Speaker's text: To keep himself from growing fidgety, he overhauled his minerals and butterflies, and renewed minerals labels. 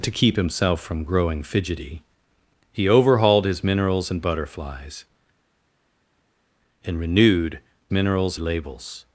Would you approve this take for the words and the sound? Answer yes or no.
yes